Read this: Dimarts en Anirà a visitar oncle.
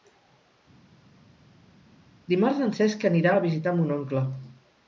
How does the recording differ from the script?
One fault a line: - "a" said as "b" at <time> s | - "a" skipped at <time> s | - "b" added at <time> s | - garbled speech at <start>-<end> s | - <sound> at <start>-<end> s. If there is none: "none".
- "Cesc" added at 2.7 s
- "mon" added at 3.8 s